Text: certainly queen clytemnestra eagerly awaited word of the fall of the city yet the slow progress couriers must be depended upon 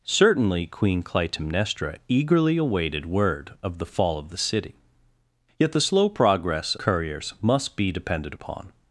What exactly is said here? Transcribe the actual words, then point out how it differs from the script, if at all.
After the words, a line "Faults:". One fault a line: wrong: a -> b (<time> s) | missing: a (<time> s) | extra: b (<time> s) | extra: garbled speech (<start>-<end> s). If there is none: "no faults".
certainly queen clytemnestra eagerly awaited word of the fall of the city yet the slow progress couriers must be depended upon
Faults:
no faults